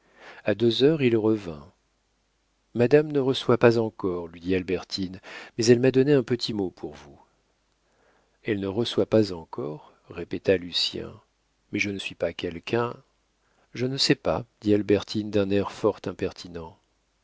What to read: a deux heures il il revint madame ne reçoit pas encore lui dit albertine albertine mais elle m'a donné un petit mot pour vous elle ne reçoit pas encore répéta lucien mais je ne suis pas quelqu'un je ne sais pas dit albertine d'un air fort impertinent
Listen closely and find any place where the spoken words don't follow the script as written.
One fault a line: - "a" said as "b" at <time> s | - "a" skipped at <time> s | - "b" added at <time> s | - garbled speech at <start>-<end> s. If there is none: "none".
- "il" skipped at 1.1 s
- "albertine" skipped at 5.2 s